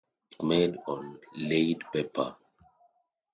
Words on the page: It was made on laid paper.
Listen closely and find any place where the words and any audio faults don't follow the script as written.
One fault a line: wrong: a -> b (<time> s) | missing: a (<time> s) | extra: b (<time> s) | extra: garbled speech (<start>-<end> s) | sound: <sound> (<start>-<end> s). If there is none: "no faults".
missing: was (0.4 s)